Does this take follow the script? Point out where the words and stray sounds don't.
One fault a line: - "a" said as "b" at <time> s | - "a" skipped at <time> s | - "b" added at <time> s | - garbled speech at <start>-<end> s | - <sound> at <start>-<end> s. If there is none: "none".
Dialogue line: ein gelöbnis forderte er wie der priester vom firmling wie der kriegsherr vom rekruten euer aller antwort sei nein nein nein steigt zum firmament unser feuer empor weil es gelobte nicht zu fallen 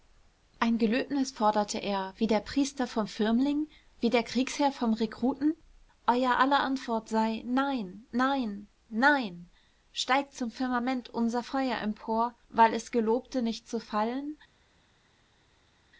none